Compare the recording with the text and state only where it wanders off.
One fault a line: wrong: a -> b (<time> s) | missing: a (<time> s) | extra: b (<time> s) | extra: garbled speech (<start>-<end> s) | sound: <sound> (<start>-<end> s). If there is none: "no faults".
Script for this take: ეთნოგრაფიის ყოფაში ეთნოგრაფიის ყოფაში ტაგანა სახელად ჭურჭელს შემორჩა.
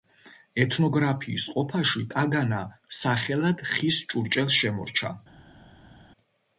missing: ეთნოგრაფიის ყოფაში (2.1 s)
extra: ხის (3.7 s)